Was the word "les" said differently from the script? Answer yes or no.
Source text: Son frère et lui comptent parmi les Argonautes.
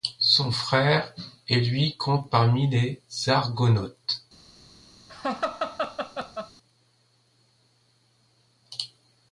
no